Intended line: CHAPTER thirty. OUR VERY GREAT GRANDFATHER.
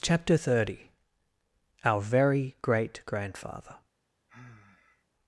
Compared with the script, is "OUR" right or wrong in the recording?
right